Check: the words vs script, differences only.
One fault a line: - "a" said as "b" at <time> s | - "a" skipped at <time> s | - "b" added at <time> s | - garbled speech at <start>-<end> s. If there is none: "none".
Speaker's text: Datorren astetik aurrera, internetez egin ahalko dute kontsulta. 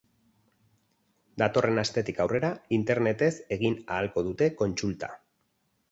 none